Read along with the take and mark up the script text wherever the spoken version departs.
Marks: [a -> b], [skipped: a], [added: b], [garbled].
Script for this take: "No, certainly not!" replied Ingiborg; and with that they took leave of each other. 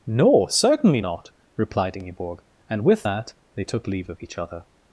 "No, certainly not!" replied Ingiborg; and with that they took leave of each other.